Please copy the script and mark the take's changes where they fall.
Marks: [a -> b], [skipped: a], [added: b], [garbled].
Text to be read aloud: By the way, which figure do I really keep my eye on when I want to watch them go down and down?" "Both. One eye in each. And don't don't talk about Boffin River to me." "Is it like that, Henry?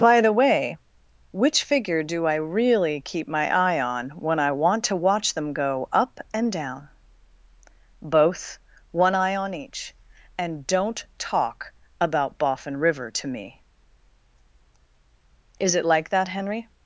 By the way, which figure do I really keep my eye on when I want to watch them go [down -> up] and down?" "Both. One eye [in -> on] each. And don't [skipped: don't] talk about Boffin River to me." "Is it like that, Henry?